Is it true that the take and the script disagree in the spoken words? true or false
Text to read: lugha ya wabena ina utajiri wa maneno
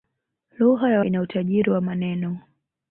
true